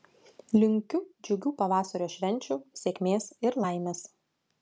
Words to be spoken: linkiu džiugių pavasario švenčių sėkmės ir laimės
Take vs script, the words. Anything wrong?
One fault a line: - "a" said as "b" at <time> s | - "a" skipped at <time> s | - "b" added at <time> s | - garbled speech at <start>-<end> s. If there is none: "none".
none